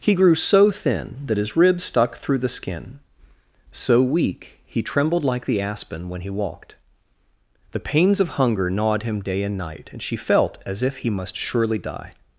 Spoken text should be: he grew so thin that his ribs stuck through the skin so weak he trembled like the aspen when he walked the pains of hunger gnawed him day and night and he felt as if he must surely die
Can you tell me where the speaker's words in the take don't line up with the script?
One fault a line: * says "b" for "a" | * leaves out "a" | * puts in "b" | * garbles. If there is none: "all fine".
* says "she" for "he"